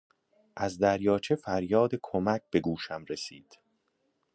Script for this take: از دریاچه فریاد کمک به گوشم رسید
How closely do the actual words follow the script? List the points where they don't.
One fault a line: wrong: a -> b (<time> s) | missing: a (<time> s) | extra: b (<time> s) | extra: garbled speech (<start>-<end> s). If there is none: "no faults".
no faults